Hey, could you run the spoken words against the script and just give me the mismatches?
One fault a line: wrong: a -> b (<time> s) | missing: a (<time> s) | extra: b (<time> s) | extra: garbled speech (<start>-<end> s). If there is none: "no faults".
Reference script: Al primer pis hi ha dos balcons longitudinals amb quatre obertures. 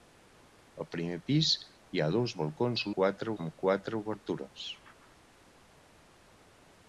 wrong: longitudinals -> quatre (3.0 s)